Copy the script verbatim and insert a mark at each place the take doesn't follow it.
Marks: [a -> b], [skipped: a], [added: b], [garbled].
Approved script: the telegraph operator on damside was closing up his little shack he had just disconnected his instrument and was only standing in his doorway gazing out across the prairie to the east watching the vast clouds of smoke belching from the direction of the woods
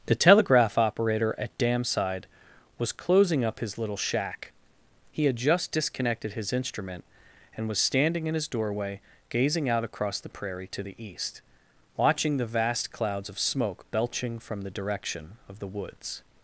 the telegraph operator [on -> at] damside was closing up his little shack he had just disconnected his instrument and was [skipped: only] standing in his doorway gazing out across the prairie to the east watching the vast clouds of smoke belching from the direction of the woods